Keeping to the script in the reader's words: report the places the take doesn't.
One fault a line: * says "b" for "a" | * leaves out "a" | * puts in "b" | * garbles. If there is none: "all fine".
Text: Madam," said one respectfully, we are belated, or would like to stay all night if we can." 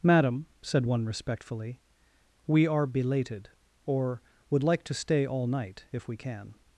all fine